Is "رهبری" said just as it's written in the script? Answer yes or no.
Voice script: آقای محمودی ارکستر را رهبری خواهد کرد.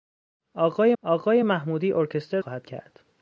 no